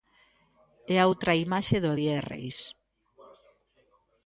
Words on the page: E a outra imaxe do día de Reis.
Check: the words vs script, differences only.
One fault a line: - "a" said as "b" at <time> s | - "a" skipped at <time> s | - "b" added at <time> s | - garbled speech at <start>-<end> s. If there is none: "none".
none